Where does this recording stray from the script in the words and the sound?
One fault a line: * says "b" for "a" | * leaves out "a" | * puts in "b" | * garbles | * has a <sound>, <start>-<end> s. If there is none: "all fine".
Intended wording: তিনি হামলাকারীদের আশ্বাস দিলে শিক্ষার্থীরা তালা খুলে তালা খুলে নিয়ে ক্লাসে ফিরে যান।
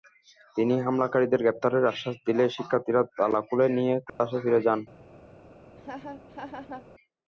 * puts in "গ্রেপ্তারের"
* leaves out "তালা খুলে"
* has a dropout, 4.1-4.2 s
* has a laugh, 5.8-6.9 s